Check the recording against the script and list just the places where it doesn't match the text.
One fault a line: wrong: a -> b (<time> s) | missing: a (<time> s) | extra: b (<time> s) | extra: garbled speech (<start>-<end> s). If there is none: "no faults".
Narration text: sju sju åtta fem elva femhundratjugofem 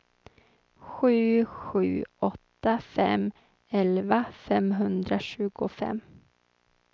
no faults